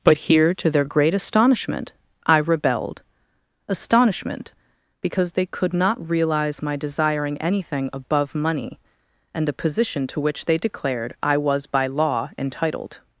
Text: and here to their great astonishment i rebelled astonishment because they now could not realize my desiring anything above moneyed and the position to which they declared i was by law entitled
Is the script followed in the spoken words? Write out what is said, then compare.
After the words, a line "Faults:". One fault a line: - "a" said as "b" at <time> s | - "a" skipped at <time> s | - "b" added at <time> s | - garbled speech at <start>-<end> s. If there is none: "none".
but here to their great astonishment i rebelled astonishment because they could not realize my desiring anything above money and the position to which they declared i was by law entitled
Faults:
- "and" said as "but" at 0.0 s
- "now" skipped at 5.5 s
- "moneyed" said as "money" at 8.3 s